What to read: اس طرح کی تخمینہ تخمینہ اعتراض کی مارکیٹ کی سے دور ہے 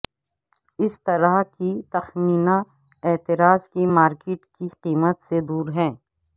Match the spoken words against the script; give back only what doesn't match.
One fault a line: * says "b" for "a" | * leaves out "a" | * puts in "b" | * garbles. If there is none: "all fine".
* leaves out "تخمینہ"
* puts in "قیمت"